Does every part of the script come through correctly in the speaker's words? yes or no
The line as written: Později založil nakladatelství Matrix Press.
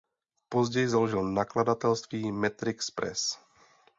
yes